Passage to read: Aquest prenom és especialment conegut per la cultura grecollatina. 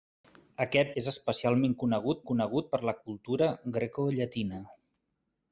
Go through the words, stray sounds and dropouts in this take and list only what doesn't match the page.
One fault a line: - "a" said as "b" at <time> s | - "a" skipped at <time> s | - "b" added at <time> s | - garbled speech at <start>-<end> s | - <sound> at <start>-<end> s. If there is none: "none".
- "prenom" skipped at 0.9 s
- "conegut" added at 2.3 s